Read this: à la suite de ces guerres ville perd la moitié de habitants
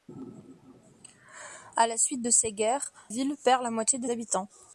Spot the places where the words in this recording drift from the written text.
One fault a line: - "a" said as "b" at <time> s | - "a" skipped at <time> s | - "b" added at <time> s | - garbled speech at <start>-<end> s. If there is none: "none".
none